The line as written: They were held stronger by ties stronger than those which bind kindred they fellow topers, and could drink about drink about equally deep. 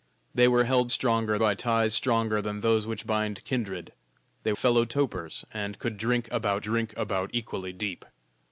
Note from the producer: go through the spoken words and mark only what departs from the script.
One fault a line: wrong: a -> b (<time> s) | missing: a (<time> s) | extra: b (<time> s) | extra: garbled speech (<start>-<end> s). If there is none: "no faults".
no faults